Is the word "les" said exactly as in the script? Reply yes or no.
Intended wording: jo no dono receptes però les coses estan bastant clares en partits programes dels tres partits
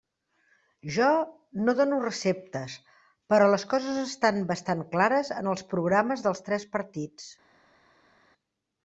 yes